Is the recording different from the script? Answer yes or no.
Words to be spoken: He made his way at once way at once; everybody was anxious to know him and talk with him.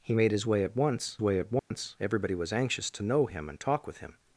no